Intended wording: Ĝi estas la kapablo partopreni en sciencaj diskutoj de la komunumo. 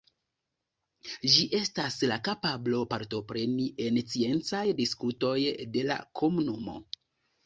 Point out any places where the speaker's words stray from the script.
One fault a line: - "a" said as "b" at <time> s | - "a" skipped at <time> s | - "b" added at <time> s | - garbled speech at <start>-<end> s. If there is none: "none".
none